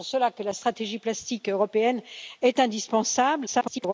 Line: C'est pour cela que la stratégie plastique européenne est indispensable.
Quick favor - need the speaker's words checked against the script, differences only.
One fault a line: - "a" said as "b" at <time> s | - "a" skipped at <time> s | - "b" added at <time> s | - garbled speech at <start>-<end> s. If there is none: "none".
- garbled speech at 3.5-3.9 s